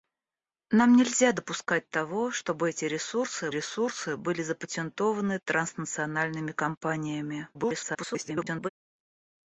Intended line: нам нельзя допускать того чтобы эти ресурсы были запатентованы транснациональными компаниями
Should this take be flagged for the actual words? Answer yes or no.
yes